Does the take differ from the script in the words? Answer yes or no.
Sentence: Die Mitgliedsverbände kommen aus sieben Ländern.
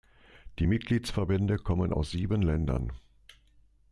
no